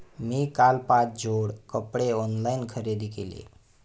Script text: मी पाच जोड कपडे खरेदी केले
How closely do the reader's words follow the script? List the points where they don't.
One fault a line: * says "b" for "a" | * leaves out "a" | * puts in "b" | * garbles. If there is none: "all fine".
* puts in "काल"
* puts in "ऑनलाइन"